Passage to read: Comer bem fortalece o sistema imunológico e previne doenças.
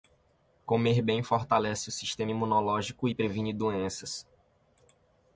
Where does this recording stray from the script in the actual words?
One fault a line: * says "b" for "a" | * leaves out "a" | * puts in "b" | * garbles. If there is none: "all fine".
all fine